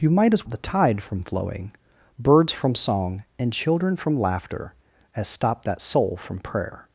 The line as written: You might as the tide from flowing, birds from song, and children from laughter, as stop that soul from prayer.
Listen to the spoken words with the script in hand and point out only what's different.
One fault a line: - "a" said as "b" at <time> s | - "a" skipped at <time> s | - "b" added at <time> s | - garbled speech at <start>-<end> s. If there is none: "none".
none